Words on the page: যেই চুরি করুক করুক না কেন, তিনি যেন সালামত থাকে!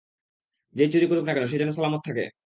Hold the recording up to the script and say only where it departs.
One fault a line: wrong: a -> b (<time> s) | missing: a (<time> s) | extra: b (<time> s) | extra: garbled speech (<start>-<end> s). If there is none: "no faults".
missing: করুক (1.2 s)
wrong: তিনি -> সে (1.4 s)